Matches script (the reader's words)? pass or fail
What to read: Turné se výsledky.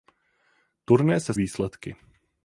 pass